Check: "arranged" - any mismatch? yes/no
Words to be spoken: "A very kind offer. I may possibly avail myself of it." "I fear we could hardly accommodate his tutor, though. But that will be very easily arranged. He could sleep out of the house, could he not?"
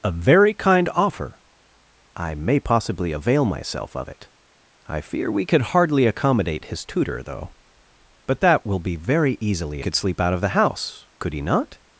yes